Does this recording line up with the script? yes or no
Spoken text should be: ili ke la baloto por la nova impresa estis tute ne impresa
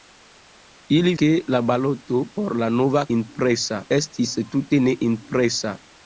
yes